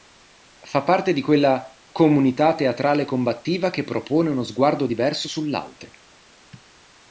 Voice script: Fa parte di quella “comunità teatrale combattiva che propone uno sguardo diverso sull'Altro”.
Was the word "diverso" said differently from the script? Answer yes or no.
no